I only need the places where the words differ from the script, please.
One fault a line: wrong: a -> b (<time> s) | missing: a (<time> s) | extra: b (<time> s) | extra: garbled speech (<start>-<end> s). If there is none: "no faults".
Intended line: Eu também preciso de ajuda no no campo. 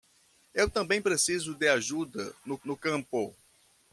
no faults